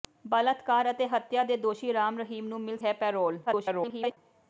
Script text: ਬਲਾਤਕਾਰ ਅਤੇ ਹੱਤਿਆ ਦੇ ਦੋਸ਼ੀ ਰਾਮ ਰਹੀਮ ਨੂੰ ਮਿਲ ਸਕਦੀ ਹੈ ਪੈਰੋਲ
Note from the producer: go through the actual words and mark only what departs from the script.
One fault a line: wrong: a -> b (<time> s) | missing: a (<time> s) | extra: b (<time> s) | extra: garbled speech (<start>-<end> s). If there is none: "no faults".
missing: ਸਕਦੀ (2.8 s)
extra: garbled speech (3.5-4.2 s)